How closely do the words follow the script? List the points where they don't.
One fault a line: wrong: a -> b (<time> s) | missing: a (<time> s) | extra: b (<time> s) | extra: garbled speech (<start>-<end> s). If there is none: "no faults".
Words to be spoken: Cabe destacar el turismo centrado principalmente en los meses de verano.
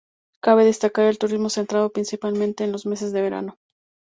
no faults